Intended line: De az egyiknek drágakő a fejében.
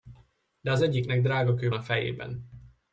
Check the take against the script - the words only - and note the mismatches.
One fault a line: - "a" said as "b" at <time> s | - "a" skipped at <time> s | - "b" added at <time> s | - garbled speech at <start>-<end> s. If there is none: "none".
none